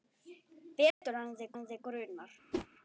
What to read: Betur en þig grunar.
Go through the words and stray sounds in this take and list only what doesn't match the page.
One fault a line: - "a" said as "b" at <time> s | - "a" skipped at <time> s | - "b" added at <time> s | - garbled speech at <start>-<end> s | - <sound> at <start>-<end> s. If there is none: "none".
- dropout at 0.9-1.0 s
- "en þig" added at 1.5 s
- whoosh at 2.5-2.7 s